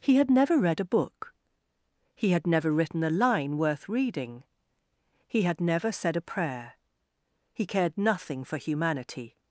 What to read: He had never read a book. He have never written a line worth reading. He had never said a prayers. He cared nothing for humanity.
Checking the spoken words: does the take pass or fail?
fail